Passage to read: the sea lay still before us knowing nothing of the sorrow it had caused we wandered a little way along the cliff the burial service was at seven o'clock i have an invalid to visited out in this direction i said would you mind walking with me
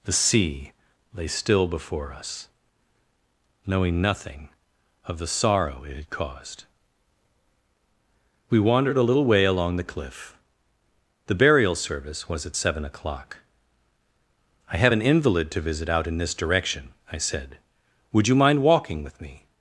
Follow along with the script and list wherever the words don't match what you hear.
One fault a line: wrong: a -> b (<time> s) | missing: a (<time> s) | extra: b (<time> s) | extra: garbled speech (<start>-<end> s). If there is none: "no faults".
wrong: visited -> visit (15.6 s)